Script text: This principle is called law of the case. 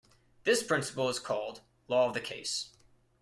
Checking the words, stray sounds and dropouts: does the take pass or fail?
pass